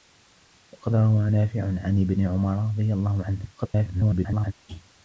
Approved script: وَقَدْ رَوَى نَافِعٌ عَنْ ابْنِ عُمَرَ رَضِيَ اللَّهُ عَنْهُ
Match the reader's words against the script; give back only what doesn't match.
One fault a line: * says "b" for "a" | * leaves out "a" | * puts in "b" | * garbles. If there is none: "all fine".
* garbles